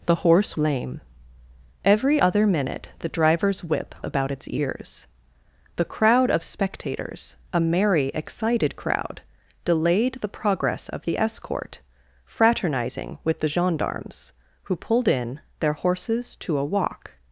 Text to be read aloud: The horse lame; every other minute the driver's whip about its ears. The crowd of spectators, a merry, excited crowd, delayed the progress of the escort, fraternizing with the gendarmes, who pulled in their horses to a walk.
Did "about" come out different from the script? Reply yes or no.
no